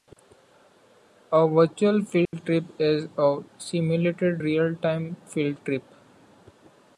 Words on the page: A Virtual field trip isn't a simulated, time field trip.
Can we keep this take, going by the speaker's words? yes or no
no